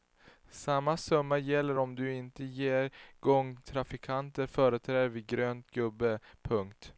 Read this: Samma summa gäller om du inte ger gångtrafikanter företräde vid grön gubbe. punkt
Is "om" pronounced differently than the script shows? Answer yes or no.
no